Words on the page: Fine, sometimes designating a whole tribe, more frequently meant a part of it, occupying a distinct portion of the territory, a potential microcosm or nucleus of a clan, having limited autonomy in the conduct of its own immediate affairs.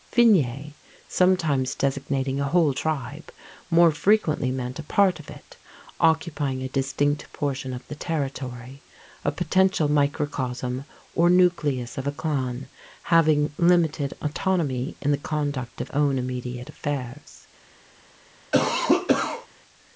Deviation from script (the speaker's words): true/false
true